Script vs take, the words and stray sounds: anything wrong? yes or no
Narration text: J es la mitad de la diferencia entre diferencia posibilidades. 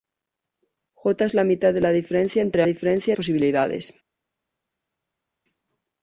no